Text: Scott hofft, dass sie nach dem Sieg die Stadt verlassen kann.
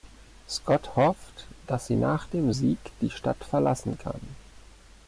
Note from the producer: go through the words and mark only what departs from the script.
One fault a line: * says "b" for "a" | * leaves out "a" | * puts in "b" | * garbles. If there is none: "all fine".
all fine